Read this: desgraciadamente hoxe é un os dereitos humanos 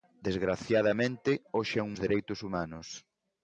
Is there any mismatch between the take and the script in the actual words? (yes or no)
no